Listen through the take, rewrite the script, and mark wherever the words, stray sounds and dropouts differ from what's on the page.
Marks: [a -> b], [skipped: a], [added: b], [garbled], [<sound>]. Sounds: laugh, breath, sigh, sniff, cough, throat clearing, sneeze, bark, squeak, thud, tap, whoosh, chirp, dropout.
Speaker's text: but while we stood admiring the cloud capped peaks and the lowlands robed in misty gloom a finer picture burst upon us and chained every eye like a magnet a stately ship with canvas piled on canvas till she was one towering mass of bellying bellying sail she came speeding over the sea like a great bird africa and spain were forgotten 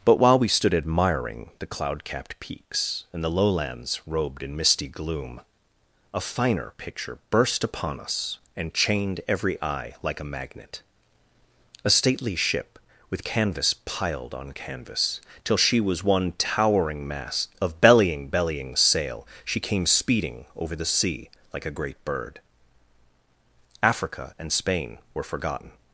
but while we stood admiring the cloud capped peaks and the lowlands robed in misty gloom a finer picture burst upon us and chained every eye like a magnet a stately ship with canvas piled on canvas till she was one towering mass of bellying bellying sail she came speeding over the sea like a great bird africa and spain were forgotten